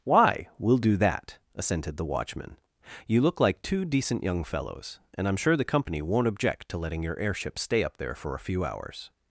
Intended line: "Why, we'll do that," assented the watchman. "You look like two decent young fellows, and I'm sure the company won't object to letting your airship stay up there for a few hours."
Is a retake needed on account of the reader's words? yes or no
no